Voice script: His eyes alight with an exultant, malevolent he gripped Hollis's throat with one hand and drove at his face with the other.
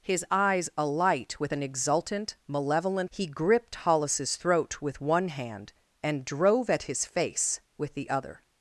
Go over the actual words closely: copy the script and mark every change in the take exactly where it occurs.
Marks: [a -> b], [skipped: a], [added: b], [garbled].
His eyes alight with an exultant, malevolent he gripped Hollis's throat with one hand and drove at his face with the other.